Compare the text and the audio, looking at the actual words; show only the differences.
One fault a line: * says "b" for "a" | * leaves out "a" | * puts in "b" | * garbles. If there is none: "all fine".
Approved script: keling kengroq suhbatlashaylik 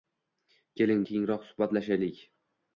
all fine